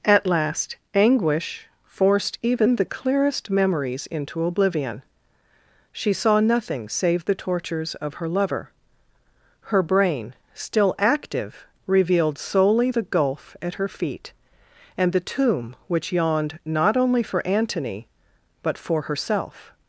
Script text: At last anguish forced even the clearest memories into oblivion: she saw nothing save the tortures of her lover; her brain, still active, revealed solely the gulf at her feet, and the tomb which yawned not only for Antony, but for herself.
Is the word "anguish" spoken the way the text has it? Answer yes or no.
yes